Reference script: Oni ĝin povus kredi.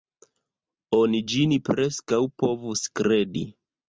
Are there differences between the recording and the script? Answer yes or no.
yes